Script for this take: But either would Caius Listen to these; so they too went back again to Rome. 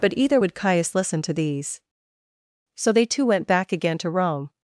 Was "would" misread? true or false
false